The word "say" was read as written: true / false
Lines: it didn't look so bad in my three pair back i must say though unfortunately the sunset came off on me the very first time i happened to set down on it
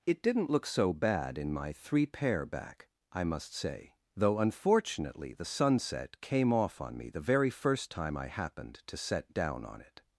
true